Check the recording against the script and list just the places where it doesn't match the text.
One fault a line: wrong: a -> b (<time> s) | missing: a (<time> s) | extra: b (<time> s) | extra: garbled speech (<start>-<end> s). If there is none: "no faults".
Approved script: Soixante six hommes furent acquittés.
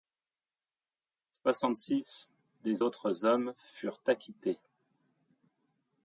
extra: des autres (2.6 s)